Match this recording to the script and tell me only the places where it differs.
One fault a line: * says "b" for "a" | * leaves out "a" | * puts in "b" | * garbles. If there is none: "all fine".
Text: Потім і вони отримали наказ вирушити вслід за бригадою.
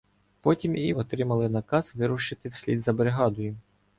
* leaves out "вони"